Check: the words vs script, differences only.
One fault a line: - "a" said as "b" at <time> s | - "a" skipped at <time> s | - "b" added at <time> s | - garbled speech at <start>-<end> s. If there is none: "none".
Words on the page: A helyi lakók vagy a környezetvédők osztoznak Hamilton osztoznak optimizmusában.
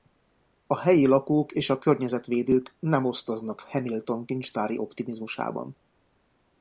- "vagy" said as "és" at 1.5 s
- "nem" added at 2.8 s
- "osztoznak" said as "kincstári" at 4.3 s